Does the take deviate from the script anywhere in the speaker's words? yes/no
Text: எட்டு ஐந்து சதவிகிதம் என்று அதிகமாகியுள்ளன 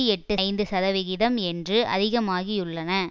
no